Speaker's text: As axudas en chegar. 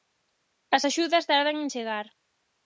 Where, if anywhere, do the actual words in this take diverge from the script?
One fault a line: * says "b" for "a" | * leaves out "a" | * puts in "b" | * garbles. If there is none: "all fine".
* puts in "tardan"